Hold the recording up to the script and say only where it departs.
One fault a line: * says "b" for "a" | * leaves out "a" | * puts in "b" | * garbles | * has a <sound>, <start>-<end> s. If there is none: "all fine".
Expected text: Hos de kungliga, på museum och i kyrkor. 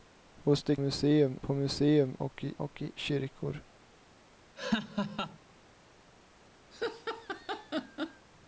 * says "museum" for "kungliga"
* puts in "och i"
* has a laugh, 4.6-5.4 s
* has a laugh, 6.7-8.3 s